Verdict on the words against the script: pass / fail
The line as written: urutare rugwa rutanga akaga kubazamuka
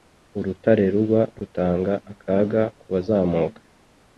pass